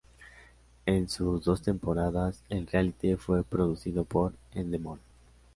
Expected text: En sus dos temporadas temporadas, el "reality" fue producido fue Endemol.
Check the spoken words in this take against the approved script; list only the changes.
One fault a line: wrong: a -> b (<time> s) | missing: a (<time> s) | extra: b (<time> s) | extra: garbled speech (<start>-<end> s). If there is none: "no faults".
missing: temporadas (2.4 s)
wrong: fue -> por (4.0 s)